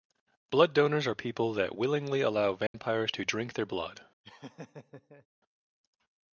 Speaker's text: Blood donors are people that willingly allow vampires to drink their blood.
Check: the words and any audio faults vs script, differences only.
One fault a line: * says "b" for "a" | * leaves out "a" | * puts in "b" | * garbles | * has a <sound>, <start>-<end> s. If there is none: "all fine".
* has a dropout, 2.7-2.7 s
* has a laugh, 4.2-5.3 s